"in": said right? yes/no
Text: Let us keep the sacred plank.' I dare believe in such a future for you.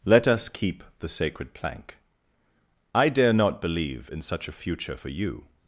yes